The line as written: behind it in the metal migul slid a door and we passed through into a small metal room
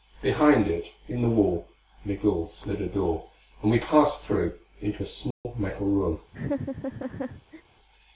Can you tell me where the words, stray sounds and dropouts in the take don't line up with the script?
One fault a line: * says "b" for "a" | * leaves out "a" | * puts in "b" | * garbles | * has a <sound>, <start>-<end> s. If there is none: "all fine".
* says "wall" for "metal"
* has a dropout, 5.3-5.5 s
* has a laugh, 6.3-7.6 s